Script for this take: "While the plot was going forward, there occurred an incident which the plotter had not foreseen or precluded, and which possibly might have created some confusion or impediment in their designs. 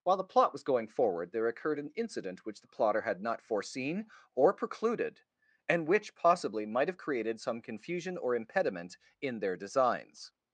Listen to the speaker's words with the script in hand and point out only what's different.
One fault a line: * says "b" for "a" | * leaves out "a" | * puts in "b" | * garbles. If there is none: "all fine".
all fine